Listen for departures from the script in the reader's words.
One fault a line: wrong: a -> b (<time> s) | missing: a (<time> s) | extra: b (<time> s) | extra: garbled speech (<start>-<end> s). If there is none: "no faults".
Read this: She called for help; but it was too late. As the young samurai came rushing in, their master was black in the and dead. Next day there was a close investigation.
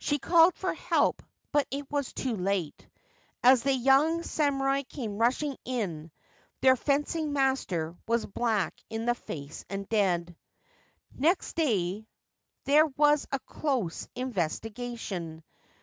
extra: fencing (6.8 s)
extra: face (9.1 s)